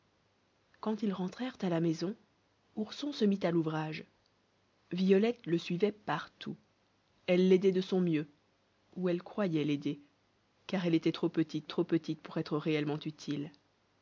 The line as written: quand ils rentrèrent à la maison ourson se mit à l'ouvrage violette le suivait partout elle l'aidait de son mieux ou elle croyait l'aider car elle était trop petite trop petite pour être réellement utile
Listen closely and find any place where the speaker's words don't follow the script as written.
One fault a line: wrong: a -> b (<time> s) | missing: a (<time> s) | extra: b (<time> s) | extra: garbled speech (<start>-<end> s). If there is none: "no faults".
no faults